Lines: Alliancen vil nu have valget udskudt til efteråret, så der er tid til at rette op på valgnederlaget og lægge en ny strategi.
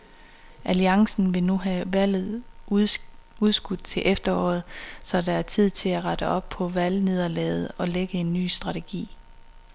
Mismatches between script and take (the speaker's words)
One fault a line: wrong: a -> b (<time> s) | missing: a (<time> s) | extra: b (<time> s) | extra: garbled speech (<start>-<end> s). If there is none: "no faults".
no faults